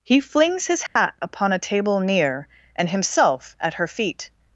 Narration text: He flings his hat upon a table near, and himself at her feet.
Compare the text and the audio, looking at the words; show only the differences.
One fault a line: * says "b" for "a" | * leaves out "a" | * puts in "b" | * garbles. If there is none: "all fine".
all fine